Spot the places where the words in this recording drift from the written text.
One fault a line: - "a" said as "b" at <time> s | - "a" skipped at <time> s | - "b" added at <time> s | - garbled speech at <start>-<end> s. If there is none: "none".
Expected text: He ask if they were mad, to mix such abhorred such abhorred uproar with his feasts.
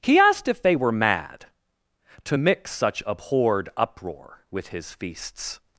- "ask" said as "asked" at 0.2 s
- "such abhorred" skipped at 3.7 s